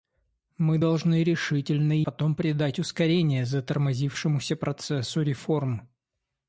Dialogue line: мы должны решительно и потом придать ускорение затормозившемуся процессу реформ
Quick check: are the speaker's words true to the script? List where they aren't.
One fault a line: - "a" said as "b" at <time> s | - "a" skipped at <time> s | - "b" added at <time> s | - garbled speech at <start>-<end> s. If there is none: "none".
none